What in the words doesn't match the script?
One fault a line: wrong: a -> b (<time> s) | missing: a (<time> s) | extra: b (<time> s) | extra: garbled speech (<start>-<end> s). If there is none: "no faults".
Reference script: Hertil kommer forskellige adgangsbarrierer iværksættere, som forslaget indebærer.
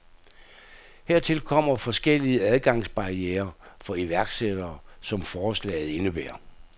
extra: for (3.8 s)